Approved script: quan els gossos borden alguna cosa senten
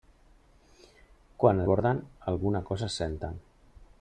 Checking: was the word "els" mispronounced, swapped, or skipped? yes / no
yes